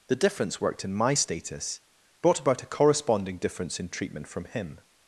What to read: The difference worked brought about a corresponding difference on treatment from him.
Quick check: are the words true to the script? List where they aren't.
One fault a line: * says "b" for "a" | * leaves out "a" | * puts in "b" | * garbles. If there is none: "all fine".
* puts in "in my status"
* says "in" for "on"